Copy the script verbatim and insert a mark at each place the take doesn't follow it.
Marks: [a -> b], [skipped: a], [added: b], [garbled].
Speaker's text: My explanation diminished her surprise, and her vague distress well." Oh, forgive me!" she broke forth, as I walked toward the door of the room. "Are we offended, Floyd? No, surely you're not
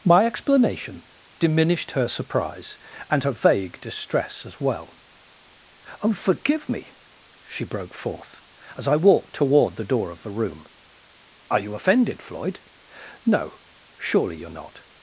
My explanation diminished her surprise, and her vague distress [added: as] well." Oh, forgive me!" she broke forth, as I walked toward the door of the room. "Are [we -> you] offended, Floyd? No, surely you're not